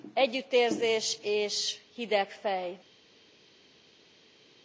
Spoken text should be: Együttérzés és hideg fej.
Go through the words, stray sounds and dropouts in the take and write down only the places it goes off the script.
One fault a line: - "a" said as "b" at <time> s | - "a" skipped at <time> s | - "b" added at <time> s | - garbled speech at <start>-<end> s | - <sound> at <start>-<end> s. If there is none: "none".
none